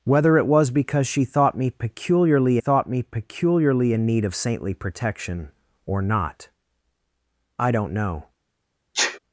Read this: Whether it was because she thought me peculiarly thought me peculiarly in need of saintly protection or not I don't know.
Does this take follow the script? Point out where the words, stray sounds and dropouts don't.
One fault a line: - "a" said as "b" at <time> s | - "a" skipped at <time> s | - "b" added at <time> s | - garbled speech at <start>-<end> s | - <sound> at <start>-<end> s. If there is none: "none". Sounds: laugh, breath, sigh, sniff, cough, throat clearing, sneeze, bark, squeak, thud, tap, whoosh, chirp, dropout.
- sneeze at 8.9-9.2 s